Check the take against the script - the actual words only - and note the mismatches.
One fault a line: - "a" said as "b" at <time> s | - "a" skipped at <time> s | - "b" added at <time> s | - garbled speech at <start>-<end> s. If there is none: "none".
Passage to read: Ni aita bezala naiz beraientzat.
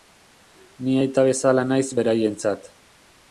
none